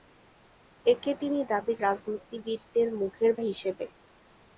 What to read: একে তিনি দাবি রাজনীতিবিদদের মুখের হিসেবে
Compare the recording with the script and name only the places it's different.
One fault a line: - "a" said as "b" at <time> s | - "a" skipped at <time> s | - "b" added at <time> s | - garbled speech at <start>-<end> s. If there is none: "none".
none